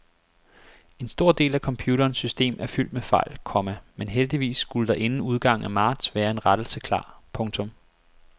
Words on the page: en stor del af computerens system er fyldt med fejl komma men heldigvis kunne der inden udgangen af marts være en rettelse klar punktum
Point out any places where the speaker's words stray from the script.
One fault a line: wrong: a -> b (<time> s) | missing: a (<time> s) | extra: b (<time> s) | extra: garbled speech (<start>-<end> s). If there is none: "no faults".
wrong: kunne -> skulle (4.6 s)